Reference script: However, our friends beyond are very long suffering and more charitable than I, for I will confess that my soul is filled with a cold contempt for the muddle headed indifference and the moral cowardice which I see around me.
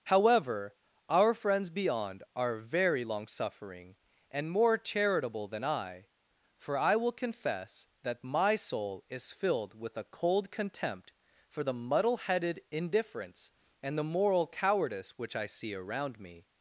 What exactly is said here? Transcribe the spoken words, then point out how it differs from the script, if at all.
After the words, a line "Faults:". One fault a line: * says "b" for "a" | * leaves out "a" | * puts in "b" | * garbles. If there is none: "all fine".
However, our friends beyond are very long suffering and more charitable than I, for I will confess that my soul is filled with a cold contempt for the muddle headed indifference and the moral cowardice which I see around me.
Faults:
all fine